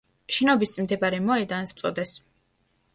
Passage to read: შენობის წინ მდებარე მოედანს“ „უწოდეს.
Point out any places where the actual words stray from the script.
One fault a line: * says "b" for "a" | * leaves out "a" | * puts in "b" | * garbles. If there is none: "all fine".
all fine